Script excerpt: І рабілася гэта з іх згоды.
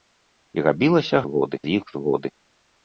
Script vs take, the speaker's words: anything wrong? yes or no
yes